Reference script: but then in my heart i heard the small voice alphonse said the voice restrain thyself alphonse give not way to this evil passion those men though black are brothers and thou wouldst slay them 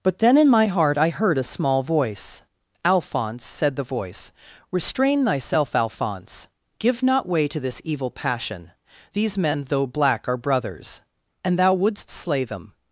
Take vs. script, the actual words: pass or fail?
fail